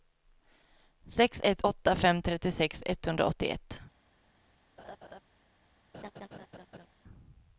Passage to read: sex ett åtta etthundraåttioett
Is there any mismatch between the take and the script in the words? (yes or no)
yes